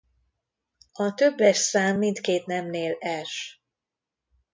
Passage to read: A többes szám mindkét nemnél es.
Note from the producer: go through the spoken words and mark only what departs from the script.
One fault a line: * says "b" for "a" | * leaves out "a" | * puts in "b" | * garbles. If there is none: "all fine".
all fine